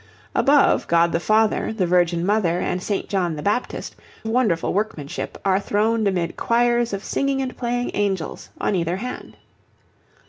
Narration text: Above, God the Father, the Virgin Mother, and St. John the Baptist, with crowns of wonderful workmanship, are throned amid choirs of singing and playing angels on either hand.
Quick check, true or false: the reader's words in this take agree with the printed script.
false